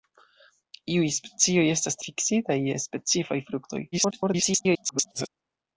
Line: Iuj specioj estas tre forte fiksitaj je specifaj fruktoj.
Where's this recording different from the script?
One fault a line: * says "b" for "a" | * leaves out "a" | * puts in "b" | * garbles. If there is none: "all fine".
* leaves out "tre forte"
* garbles